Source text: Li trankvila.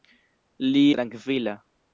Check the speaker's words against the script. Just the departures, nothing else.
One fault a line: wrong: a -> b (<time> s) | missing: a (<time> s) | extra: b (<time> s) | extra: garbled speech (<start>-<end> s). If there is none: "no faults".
no faults